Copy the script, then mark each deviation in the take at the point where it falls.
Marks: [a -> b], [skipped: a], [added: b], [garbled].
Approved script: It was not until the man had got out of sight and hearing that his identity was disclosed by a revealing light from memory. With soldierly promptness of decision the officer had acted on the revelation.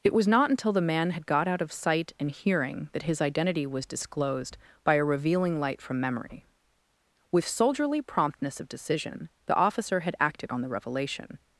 It was not until the man had got out of sight and hearing that his identity was disclosed by a revealing light from memory. With soldierly promptness of decision the officer had acted on the revelation.